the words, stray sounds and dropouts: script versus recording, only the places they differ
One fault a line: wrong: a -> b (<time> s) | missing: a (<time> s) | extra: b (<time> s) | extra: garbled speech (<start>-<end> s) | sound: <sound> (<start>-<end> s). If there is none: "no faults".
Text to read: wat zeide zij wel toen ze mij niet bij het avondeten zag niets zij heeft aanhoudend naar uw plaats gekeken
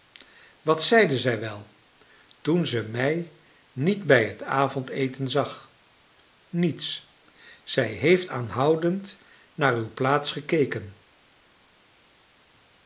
no faults